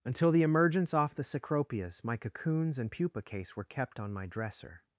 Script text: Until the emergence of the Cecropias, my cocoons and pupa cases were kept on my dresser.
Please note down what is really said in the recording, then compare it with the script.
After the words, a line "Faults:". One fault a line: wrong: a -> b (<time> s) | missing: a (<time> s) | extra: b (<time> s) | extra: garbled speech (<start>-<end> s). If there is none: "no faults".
Until the emergence off the Cecropias, my cocoons and pupa case were kept on my dresser.
Faults:
wrong: of -> off (0.9 s)
wrong: cases -> case (3.2 s)